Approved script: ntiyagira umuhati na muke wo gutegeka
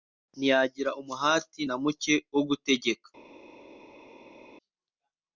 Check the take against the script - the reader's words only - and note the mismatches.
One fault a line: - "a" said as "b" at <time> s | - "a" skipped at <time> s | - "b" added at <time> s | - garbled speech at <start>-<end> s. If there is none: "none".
none